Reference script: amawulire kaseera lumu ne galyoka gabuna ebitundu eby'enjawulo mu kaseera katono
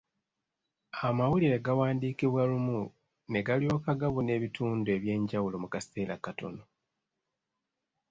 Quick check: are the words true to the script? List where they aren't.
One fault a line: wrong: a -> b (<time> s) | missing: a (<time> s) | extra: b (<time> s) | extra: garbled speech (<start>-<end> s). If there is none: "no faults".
wrong: kaseera -> gawandiikibwa (1.6 s)